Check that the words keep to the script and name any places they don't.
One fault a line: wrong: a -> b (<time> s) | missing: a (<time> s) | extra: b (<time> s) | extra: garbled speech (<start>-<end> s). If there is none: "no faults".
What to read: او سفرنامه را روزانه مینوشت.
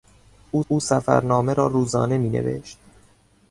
extra: او (0.7 s)